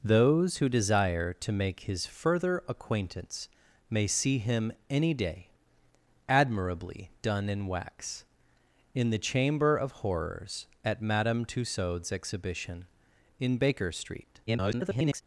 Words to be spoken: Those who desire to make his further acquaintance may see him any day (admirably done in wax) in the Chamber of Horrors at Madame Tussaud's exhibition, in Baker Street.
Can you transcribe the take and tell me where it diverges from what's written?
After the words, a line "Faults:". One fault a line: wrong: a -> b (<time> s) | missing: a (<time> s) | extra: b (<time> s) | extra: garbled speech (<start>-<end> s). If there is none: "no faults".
Those who desire to make his further acquaintance may see him any day (admirably done in wax) in the Chamber of Horrors at Madame Tussaud's exhibition, in Baker Street. [garbled]
Faults:
extra: garbled speech (14.5-15.2 s)